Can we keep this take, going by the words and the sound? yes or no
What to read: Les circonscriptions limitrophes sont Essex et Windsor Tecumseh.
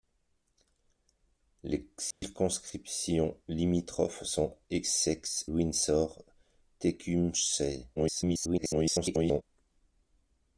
no